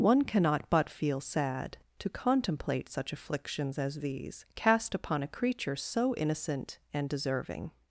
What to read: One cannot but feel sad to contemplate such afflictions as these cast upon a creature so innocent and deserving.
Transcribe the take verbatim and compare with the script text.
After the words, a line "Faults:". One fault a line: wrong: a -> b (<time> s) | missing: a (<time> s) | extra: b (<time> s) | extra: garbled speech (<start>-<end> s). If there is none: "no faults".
One cannot but feel sad to contemplate such afflictions as these cast upon a creature so innocent and deserving.
Faults:
no faults